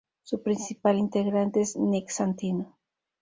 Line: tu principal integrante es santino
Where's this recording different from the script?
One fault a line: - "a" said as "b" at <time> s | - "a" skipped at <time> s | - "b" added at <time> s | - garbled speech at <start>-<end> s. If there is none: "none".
- "tu" said as "su" at 0.2 s
- "nick" added at 1.7 s